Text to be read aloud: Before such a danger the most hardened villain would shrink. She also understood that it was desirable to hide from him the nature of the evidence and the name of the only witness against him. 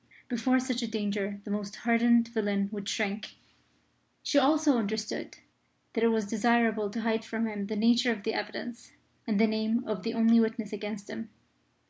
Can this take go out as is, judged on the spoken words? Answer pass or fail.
pass